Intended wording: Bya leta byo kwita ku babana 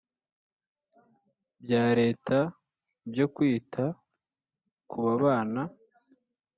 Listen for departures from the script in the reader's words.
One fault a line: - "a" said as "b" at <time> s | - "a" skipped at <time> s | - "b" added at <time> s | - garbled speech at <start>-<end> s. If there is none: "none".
none